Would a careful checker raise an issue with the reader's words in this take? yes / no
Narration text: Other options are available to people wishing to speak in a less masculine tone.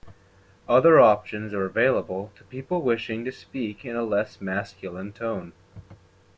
no